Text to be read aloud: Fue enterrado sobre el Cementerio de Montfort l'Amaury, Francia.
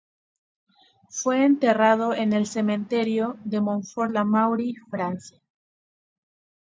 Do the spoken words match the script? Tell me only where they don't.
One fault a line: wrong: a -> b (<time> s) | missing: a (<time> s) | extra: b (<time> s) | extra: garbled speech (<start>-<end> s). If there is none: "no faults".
wrong: sobre -> en (2.1 s)